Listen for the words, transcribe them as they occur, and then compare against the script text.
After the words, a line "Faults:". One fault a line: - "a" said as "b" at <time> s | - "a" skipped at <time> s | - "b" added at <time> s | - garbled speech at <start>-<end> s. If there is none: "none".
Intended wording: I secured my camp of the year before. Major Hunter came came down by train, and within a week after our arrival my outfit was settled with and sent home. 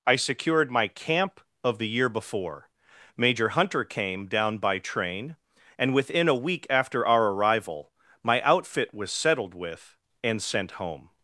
I secured my camp of the year before. Major Hunter came down by train, and within a week after our arrival my outfit was settled with and sent home.
Faults:
- "came" skipped at 4.2 s